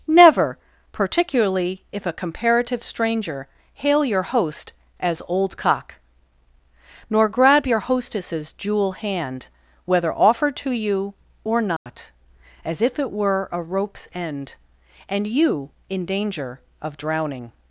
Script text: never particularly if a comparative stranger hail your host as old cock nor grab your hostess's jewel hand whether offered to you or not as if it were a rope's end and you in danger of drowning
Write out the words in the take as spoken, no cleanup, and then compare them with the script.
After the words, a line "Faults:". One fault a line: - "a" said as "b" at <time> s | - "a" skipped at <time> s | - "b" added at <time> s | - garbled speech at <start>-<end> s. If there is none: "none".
never particularly if a comparative stranger hail your host as old cock nor grab your hostess's jewel hand whether offered to you or not as if it were a rope's end and you in danger of drowning
Faults:
none